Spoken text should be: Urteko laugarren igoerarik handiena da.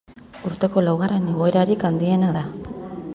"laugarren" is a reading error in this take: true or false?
false